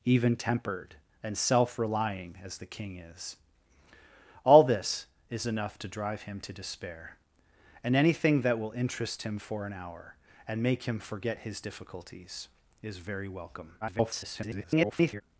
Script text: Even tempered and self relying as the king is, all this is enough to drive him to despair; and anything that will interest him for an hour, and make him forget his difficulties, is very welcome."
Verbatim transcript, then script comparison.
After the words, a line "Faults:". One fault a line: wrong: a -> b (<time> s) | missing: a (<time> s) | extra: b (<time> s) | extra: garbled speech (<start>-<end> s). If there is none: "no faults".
Even tempered and self relying as the king is, all this is enough to drive him to despair; and anything that will interest him for an hour, and make him forget his difficulties, is very welcome." [garbled]
Faults:
extra: garbled speech (13.8-15.2 s)